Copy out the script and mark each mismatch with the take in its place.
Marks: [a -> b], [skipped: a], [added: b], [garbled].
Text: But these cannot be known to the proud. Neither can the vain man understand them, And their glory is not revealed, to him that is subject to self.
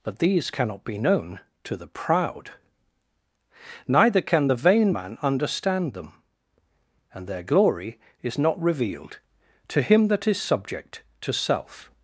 But these cannot be known to the proud. Neither can the vain man understand them, And their glory is not revealed, to him that is subject to self.